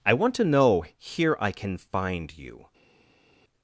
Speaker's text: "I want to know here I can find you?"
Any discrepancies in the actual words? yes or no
no